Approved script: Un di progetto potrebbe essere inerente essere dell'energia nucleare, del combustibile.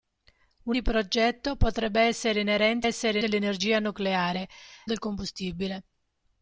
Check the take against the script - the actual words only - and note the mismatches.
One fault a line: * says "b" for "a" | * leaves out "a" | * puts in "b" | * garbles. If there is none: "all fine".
all fine